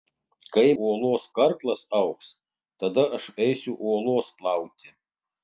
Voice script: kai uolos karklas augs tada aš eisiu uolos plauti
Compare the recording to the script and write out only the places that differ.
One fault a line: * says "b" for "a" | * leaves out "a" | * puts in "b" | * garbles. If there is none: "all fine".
all fine